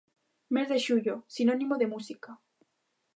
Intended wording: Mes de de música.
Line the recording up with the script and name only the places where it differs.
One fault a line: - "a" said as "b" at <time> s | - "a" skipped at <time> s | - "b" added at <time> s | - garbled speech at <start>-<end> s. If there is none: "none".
- "xullo sinónimo" added at 0.8 s